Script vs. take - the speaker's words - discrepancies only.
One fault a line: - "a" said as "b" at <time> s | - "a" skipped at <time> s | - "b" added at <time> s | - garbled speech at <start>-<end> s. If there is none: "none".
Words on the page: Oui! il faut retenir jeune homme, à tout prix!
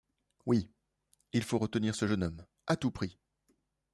- "ce" added at 1.9 s